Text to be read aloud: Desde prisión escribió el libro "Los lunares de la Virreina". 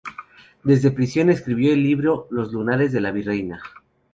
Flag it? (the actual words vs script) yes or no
no